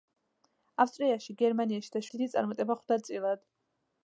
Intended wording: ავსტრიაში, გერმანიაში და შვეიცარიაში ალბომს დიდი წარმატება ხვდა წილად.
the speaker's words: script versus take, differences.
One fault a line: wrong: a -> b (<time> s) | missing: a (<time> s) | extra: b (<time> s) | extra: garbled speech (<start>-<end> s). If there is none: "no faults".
missing: შვეიცარიაში ალბომს (2.0 s)